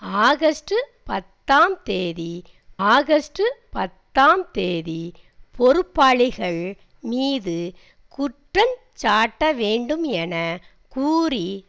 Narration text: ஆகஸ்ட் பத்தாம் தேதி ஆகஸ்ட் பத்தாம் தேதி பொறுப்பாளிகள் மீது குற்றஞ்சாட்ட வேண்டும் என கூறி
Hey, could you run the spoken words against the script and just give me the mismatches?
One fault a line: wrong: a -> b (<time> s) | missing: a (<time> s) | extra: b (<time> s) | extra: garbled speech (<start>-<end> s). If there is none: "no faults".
no faults